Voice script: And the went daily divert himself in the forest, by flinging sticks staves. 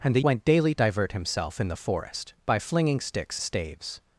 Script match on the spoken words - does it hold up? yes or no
yes